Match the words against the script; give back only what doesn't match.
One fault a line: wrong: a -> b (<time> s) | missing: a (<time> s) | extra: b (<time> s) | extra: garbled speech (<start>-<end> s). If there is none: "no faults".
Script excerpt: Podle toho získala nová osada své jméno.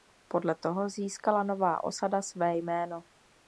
no faults